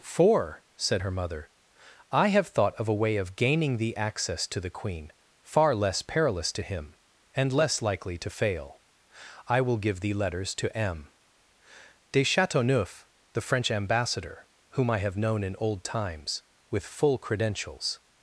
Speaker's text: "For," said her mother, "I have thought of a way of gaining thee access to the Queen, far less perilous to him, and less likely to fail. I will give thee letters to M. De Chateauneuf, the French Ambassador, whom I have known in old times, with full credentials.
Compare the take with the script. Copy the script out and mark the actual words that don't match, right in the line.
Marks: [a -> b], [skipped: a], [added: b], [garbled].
"For," said her mother, "I have thought of a way of gaining thee access to the Queen, far less perilous to him, and less likely to fail. I will give thee letters to M. De Chateauneuf, the French Ambassador, whom I have known in old times, with full credentials.